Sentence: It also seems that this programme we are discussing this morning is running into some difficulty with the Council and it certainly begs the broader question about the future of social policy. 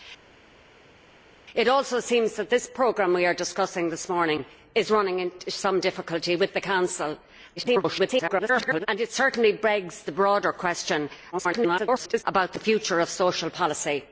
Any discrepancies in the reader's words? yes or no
yes